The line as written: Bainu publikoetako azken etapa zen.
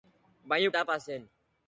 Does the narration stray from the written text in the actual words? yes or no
yes